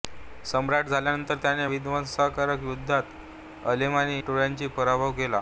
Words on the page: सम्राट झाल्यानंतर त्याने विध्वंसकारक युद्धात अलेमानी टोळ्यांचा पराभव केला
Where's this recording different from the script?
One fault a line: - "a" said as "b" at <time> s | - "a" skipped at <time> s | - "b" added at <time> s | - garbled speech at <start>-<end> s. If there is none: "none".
none